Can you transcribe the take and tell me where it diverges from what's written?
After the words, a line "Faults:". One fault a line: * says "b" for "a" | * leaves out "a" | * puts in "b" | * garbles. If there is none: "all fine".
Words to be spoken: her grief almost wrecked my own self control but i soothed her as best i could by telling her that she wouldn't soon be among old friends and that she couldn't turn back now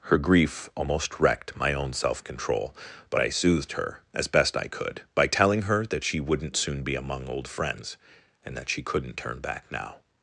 her grief almost wrecked my own self control but i soothed her as best i could by telling her that she wouldn't soon be among old friends and that she couldn't turn back now
Faults:
all fine